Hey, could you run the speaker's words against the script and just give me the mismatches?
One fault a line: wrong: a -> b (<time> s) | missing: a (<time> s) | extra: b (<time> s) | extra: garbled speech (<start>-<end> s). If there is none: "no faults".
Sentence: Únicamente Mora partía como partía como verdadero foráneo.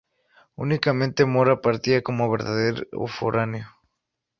missing: partía como (2.3 s)